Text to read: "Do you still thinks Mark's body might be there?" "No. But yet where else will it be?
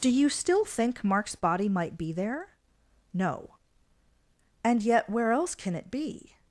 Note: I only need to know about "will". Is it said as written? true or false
false